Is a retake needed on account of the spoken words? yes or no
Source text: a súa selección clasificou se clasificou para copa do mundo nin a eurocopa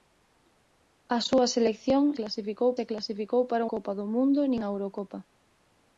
no